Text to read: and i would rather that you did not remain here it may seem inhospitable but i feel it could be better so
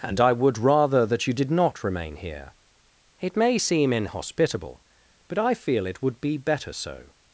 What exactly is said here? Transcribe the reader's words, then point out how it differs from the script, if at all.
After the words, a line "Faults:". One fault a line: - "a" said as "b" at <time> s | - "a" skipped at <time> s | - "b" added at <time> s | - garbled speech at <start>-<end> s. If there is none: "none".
and i would rather that you did not remain here it may seem inhospitable but i feel it would be better so
Faults:
- "could" said as "would" at 6.0 s